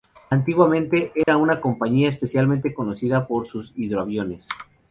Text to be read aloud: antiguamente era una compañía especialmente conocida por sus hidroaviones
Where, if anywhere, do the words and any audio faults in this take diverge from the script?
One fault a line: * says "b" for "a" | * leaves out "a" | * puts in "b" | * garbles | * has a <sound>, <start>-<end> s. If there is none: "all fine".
* has a dropout, 1.2-1.3 s